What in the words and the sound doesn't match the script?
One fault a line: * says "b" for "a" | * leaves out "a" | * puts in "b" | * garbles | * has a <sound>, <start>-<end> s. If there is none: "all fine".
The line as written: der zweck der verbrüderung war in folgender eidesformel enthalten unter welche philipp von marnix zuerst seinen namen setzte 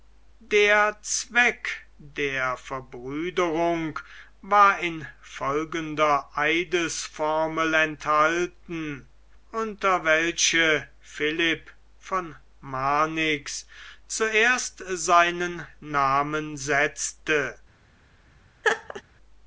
* has a laugh, 18.6-19.0 s